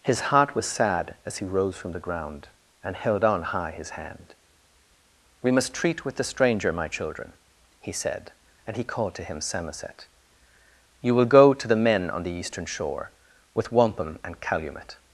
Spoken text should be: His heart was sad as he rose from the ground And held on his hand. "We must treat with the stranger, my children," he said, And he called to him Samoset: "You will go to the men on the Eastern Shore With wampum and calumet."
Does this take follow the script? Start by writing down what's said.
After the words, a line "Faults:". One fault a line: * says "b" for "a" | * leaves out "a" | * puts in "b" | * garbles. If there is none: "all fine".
His heart was sad as he rose from the ground And held on high his hand. "We must treat with the stranger, my children," he said, And he called to him Samoset: "You will go to the men on the Eastern Shore With wampum and calumet."
Faults:
* puts in "high"